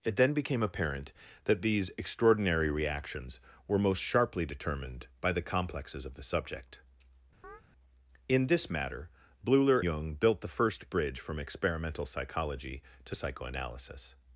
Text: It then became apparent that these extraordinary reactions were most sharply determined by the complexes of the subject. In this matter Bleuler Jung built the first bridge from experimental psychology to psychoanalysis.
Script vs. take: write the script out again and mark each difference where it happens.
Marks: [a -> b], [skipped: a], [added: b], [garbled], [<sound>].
It then became apparent that these extraordinary reactions were most sharply determined by the complexes of the subject. [chirp] In this matter Bleuler Jung built the first bridge from experimental psychology to psychoanalysis.